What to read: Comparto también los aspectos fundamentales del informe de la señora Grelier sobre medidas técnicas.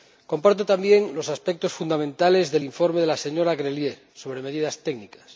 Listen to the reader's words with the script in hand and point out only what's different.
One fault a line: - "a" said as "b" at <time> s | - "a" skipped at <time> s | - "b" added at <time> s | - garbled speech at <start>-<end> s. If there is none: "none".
none